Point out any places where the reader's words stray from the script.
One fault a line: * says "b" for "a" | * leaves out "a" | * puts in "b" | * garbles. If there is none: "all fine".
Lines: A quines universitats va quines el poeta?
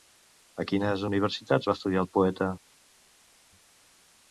* says "estudiar" for "quines"